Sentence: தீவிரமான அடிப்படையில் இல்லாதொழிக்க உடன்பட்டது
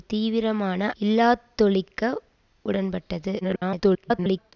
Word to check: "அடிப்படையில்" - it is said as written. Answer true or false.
false